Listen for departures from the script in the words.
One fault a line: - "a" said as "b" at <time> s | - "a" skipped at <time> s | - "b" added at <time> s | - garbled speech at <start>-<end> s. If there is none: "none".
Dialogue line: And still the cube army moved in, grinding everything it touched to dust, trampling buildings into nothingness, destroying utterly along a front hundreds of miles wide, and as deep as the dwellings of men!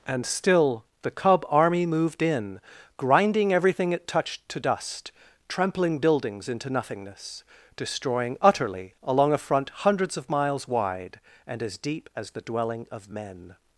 - "cube" said as "cub" at 1.1 s
- "dwellings" said as "dwelling" at 12.4 s